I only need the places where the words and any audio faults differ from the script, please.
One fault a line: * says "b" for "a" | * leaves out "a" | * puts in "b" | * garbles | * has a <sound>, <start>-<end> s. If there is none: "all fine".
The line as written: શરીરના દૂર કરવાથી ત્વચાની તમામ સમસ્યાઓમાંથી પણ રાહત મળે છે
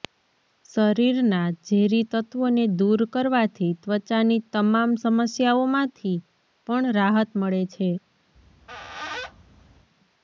* puts in "ઝેરી તત્વોને"
* has a squeak, 8.3-9.9 s